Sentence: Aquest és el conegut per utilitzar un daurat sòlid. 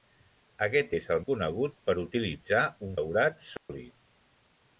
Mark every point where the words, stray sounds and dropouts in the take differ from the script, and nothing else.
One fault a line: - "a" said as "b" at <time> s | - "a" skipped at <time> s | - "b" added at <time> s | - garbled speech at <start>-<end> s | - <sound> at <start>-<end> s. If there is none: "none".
- dropout at 3.6-3.7 s